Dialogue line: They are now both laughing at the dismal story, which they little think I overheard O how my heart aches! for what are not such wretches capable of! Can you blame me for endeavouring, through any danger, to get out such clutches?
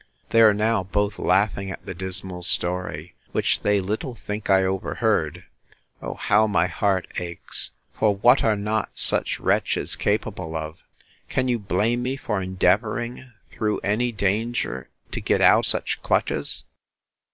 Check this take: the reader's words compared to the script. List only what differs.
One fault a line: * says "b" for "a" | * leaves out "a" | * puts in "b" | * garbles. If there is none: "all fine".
all fine